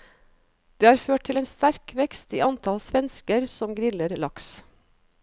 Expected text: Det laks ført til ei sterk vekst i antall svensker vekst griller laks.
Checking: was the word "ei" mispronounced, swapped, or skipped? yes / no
yes